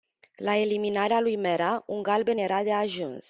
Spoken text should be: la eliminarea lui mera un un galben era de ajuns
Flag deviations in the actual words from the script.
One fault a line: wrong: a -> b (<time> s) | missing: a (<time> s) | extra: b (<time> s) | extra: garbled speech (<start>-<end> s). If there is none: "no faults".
missing: un (2.0 s)